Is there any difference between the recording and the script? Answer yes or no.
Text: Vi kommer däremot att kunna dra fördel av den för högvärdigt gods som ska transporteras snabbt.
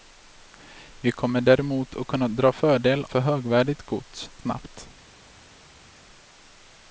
yes